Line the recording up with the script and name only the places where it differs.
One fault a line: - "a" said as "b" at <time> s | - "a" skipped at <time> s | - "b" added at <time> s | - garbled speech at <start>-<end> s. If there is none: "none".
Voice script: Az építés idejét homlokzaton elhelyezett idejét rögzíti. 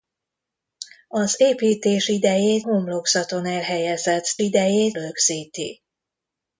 none